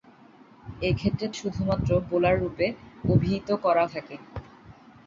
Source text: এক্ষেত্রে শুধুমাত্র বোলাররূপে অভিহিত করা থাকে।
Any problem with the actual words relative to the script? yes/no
no